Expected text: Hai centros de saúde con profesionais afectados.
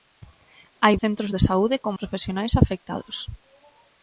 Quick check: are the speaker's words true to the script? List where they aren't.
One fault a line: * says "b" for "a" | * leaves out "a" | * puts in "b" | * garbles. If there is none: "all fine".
all fine